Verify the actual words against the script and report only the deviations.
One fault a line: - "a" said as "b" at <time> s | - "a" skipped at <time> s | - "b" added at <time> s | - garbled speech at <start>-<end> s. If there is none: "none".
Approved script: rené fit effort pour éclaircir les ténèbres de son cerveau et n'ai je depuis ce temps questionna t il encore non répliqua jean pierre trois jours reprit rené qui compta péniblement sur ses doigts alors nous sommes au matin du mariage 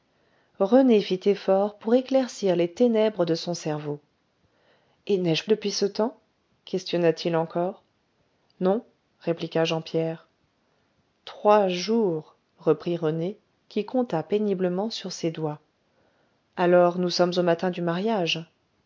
none